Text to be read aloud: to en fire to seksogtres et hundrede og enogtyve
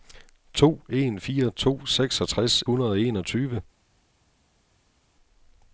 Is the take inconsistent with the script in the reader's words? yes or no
yes